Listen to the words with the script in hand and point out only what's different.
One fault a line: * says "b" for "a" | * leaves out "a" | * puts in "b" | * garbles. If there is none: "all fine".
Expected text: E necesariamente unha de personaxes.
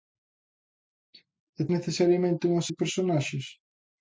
all fine